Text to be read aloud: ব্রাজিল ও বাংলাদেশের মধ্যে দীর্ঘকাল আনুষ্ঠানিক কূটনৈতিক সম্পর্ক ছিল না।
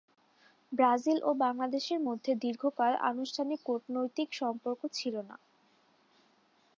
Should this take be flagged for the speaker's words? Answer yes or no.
no